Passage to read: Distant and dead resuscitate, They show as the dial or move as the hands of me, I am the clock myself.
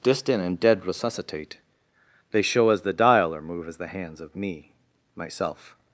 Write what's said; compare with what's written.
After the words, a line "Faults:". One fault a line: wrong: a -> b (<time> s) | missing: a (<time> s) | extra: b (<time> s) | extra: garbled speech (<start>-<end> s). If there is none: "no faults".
Distant and dead resuscitate, They show as the dial or move as the hands of me, myself.
Faults:
missing: I am the clock (4.7 s)